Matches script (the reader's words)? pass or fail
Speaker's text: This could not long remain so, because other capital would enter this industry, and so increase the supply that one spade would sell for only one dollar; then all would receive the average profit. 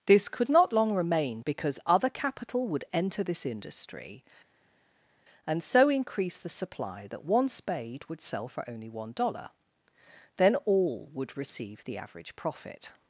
fail